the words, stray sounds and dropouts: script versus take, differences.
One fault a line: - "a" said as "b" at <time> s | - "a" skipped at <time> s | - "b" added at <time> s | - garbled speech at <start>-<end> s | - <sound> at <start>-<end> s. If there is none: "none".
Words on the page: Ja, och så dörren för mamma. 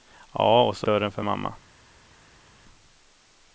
none